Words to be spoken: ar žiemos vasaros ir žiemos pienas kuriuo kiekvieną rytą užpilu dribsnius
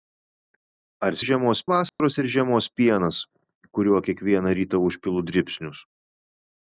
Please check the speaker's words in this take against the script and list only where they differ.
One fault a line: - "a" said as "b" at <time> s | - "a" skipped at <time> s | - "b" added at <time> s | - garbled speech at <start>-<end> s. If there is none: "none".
none